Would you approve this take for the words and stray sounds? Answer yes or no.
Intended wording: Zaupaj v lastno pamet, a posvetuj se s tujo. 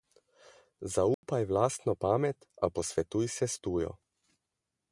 no